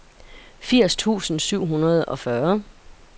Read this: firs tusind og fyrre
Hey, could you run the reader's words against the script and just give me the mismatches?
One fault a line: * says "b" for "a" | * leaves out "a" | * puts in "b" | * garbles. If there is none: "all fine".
* puts in "syv hundrede"